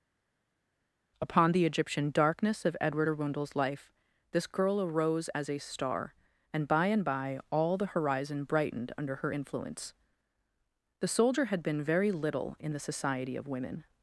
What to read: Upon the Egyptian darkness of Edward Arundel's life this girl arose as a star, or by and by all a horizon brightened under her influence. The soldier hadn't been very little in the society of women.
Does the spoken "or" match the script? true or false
false